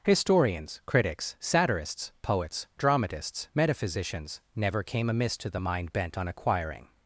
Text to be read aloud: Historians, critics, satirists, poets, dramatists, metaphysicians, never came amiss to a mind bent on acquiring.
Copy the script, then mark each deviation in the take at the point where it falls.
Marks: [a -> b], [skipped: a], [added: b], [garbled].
Historians, critics, satirists, poets, dramatists, metaphysicians, never came amiss to [a -> the] mind bent on acquiring.